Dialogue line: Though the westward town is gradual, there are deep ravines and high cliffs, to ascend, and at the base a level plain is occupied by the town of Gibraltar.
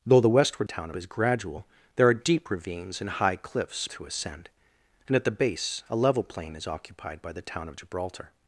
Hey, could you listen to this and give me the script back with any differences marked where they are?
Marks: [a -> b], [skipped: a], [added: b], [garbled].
Though the westward town is gradual, there are deep ravines and high cliffs, to ascend, and at the base a level plain is occupied by the town of Gibraltar.